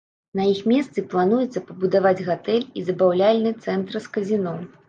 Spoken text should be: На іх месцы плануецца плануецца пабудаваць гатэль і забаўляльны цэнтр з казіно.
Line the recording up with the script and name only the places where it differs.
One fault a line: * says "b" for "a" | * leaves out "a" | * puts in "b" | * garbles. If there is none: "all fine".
* leaves out "плануецца"